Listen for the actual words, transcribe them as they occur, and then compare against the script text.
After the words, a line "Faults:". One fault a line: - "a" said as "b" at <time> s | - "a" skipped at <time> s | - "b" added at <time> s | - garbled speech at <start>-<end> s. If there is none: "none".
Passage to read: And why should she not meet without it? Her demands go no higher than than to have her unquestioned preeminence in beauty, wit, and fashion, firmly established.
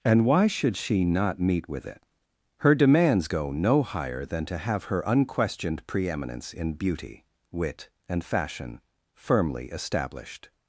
And why should she not meet with it? Her demands go no higher than to have her unquestioned preeminence in beauty, wit, and fashion, firmly established.
Faults:
- "without" said as "with" at 1.7 s
- "than" skipped at 4.5 s